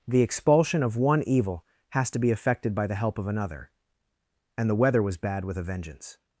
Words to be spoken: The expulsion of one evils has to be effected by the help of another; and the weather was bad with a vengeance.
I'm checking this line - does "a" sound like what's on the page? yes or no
yes